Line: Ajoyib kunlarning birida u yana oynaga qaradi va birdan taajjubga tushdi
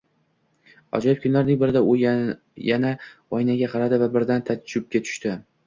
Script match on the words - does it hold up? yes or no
yes